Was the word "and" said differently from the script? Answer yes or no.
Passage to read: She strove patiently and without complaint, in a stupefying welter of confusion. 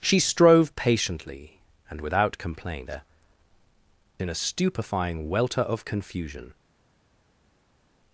no